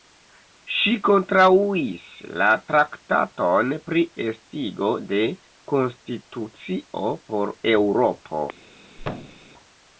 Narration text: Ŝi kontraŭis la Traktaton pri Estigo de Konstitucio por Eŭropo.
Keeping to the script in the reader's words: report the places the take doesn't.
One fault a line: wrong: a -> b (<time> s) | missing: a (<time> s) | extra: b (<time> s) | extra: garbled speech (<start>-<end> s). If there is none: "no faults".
no faults